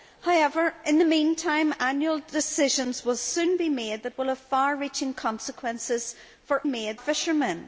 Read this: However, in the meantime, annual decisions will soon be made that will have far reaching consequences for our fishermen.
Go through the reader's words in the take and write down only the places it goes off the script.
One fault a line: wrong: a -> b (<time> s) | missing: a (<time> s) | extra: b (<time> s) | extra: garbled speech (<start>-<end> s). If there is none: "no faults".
wrong: our -> made (6.7 s)